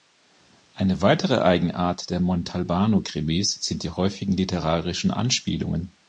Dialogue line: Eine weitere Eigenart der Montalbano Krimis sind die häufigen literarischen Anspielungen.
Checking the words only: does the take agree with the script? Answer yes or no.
yes